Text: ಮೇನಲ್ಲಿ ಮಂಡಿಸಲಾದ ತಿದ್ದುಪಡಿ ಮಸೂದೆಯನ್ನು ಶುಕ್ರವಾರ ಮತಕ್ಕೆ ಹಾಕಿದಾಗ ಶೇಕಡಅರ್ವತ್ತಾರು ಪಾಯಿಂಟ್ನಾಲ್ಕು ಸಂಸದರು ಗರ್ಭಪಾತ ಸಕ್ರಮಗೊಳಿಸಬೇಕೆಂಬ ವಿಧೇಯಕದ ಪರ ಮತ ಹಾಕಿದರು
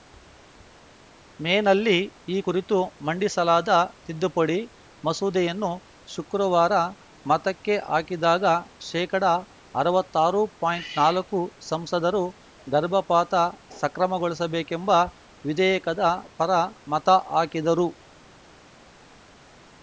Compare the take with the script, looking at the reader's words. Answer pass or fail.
fail